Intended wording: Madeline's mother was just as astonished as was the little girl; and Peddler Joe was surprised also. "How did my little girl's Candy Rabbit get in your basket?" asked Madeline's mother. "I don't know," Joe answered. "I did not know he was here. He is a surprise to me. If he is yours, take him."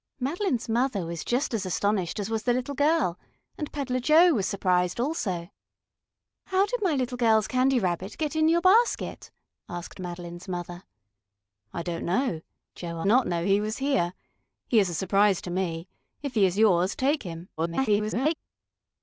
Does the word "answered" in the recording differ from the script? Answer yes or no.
yes